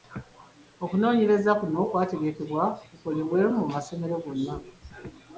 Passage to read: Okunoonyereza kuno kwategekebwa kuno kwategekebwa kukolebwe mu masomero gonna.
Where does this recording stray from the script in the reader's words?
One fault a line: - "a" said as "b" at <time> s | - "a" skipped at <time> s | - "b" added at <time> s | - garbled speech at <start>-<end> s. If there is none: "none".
- "kuno kwategekebwa" skipped at 2.6 s